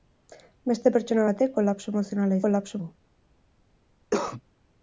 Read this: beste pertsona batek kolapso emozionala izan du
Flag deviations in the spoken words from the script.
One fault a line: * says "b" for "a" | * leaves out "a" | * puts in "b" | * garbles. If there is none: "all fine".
* says "kolapso" for "izan"